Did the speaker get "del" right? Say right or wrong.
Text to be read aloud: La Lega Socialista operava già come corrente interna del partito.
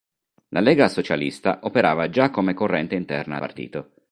wrong